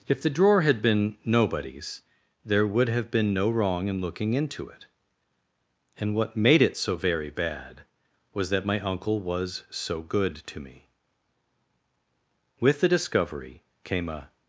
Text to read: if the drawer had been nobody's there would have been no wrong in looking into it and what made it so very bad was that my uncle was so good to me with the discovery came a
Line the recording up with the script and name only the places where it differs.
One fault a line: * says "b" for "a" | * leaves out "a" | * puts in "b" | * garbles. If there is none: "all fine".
all fine